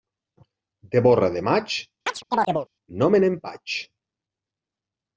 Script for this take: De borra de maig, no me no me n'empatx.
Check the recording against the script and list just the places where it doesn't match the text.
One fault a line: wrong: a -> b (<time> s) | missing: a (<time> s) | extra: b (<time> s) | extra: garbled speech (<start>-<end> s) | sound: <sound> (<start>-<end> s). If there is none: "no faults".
sound: chirp (2.1-2.7 s)
missing: no me (3.3 s)